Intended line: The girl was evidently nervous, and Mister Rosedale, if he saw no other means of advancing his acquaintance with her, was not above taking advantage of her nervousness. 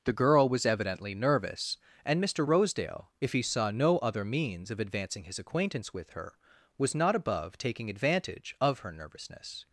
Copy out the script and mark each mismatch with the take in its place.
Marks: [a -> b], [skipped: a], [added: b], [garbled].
The girl was evidently nervous, and Mister Rosedale, if he saw no other means of advancing his acquaintance with her, was not above taking advantage of her nervousness.